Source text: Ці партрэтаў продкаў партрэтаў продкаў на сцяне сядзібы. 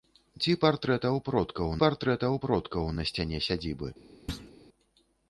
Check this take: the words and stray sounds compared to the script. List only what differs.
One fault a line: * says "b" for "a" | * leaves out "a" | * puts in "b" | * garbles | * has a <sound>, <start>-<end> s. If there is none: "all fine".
* has a thud, 4.3-4.5 s